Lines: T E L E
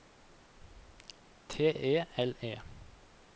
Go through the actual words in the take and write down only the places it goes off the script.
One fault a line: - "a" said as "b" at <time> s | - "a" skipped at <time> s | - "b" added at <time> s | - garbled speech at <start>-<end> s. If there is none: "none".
none